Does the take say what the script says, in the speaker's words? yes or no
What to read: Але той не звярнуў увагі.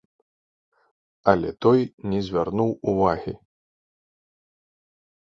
yes